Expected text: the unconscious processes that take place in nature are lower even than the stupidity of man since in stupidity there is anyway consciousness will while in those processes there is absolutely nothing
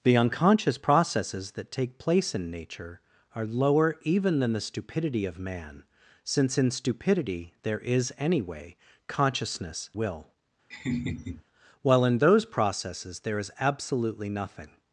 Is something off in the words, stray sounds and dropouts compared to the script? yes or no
yes